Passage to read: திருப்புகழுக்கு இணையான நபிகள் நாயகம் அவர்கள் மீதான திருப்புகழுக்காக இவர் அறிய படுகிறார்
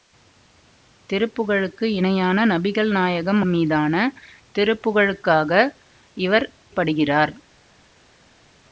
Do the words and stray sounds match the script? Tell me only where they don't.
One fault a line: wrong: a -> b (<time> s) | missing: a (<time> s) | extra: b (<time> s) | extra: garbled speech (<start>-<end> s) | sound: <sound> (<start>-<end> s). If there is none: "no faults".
missing: அவர்கள் (3.4 s)
missing: அறிய (6.5 s)